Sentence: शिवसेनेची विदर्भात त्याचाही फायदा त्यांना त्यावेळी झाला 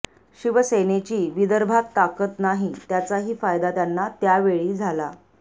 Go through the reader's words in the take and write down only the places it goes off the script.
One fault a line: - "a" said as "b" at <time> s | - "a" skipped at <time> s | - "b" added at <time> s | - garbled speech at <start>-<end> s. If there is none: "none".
- "ताकद नाही" added at 1.9 s